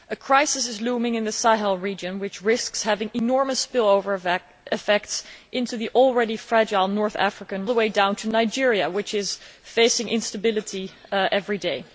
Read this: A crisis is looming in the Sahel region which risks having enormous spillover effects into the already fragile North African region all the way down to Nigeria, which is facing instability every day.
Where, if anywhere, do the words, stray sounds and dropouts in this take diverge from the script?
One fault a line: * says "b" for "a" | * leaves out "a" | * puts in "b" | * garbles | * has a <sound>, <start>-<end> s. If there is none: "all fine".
* leaves out "region all"